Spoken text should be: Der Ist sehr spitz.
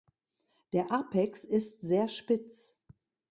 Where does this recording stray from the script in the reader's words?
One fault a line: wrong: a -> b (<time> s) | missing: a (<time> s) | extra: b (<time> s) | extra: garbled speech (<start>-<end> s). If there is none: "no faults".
extra: Apex (0.9 s)